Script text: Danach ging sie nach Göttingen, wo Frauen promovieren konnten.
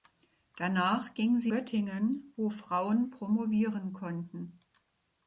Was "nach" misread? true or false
true